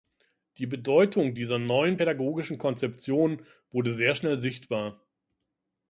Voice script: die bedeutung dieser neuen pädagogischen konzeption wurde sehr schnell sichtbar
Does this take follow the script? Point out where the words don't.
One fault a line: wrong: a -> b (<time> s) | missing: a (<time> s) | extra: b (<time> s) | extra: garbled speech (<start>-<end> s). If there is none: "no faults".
no faults